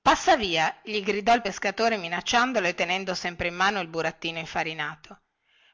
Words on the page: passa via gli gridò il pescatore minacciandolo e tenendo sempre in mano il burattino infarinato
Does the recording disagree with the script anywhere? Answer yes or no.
no